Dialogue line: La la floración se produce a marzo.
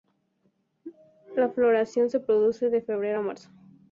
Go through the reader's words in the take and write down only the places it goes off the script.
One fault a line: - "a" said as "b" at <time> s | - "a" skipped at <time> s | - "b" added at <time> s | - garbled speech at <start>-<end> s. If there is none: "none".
- "la" skipped at 1.5 s
- "de febrero" added at 2.7 s